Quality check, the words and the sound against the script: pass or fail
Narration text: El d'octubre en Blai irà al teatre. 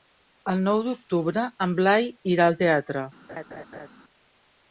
fail